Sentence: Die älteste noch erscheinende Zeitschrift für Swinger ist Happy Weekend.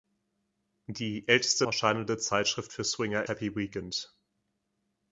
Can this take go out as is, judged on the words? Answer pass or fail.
fail